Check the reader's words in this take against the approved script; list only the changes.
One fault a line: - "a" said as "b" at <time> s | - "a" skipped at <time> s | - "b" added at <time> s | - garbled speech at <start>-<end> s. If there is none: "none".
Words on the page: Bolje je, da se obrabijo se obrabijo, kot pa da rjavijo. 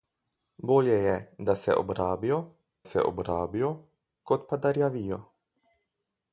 none